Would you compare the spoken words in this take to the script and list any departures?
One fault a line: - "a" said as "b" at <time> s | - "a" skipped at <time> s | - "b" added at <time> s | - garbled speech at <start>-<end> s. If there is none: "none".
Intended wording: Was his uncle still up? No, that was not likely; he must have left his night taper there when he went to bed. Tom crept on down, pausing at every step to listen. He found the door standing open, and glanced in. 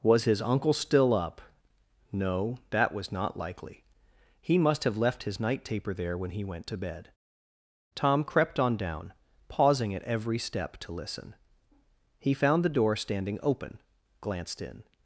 - "and" skipped at 13.8 s